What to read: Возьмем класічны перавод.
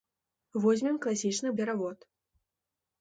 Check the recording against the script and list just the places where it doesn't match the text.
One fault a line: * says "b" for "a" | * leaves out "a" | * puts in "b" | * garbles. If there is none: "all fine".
all fine